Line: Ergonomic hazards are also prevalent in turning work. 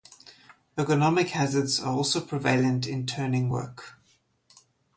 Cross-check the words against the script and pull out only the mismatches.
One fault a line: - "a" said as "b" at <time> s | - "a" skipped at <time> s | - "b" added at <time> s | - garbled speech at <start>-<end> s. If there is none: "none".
none